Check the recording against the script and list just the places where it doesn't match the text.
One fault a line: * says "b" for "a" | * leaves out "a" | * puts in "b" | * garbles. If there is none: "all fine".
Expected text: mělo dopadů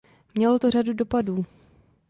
* puts in "to řadu"